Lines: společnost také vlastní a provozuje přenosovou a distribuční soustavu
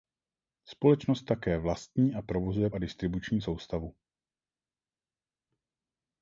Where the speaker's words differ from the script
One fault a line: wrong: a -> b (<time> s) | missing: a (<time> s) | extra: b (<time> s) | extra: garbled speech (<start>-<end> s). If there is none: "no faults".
missing: přenosovou (2.7 s)